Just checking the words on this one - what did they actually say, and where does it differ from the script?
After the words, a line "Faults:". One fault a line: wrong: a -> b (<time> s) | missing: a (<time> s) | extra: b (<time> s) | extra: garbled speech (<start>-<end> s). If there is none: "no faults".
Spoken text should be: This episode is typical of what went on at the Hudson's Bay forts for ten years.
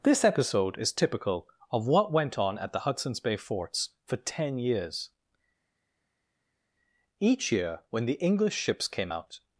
This episode is typical of what went on at the Hudson's Bay forts for ten years. Each year, when the English ships came out
Faults:
extra: Each year when the English ships came out (7.2 s)